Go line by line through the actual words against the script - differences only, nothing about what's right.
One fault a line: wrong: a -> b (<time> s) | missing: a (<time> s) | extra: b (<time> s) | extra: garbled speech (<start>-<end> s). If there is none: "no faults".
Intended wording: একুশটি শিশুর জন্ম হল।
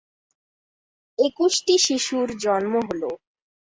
no faults